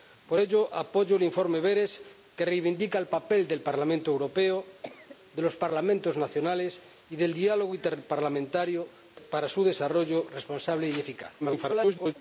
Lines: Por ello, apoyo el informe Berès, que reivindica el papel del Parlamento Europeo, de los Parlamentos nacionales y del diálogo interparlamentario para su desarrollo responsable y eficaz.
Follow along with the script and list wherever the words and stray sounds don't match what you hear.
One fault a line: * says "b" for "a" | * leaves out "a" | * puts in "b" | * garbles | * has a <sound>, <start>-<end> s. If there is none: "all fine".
* has a cough, 4.8-5.2 s
* garbles